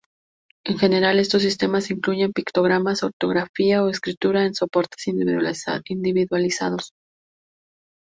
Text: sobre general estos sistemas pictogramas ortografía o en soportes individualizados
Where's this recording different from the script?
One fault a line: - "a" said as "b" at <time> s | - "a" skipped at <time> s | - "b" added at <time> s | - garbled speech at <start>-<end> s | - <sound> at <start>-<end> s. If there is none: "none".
- "sobre" said as "en" at 0.7 s
- "incluyen" added at 1.9 s
- "escritura" added at 3.9 s